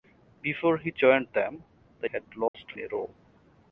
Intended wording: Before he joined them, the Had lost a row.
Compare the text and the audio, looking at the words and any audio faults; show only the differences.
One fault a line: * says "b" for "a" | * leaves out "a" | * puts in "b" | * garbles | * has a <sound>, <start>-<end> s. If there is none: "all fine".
* has a dropout, 2.5-2.5 s